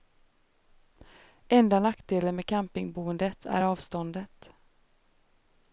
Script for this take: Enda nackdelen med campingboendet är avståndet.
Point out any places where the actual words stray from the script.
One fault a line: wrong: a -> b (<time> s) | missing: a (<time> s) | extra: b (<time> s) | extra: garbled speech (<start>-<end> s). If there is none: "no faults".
no faults